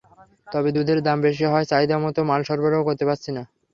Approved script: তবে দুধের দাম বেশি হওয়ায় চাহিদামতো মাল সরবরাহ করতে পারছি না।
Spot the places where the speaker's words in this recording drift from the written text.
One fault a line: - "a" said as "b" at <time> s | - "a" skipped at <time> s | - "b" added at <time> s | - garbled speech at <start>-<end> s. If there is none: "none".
none